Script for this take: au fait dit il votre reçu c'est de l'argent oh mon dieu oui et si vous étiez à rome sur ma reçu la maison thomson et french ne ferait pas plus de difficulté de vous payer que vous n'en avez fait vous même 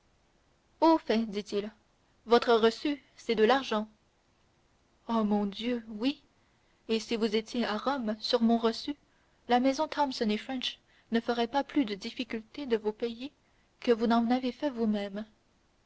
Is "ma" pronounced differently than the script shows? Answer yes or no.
yes